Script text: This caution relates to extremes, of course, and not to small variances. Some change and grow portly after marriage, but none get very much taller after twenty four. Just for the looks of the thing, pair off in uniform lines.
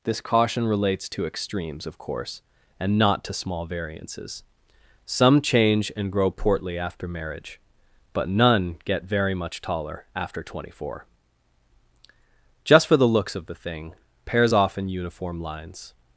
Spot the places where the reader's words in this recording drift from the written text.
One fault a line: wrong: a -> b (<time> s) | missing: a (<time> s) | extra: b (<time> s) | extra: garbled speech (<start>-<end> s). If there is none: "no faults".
wrong: pair -> pairs (14.2 s)